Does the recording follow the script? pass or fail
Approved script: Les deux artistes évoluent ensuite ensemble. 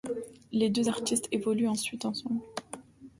pass